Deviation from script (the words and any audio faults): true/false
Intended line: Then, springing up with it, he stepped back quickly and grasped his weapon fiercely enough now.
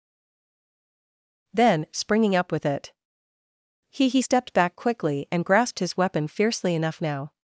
true